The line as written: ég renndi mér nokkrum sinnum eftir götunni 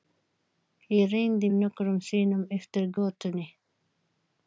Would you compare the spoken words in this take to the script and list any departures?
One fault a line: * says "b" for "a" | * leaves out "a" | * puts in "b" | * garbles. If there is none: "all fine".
* leaves out "mér"